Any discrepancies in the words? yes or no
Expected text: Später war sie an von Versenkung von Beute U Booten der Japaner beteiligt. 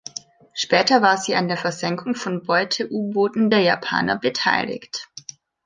yes